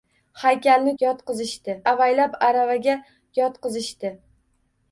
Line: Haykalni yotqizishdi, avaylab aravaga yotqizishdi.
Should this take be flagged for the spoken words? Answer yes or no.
no